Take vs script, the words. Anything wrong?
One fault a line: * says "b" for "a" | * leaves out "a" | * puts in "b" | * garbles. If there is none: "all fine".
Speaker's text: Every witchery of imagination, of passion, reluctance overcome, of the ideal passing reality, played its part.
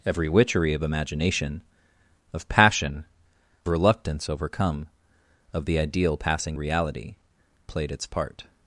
all fine